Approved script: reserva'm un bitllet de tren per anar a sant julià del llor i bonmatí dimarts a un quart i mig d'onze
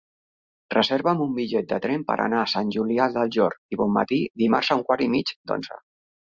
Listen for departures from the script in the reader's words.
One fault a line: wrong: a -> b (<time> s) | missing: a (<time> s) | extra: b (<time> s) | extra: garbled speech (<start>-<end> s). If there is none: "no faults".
no faults